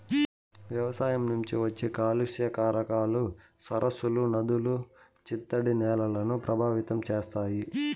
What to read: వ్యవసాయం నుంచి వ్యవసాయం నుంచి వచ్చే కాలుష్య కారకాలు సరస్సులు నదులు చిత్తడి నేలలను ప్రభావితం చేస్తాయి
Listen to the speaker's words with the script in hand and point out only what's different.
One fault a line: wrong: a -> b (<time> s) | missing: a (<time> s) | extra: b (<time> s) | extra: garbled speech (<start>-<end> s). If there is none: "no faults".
missing: వ్యవసాయం నుంచి (1.6 s)